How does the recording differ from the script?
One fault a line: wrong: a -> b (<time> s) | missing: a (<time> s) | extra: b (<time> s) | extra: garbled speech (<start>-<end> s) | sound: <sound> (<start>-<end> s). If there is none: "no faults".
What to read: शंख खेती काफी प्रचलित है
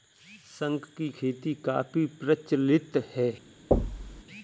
extra: की (1.0 s)
sound: thud (3.7-4.2 s)